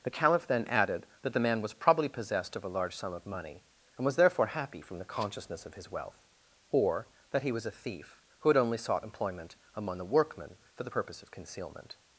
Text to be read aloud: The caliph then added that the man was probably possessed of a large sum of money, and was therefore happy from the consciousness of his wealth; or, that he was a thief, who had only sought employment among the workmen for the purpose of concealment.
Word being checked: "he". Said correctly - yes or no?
yes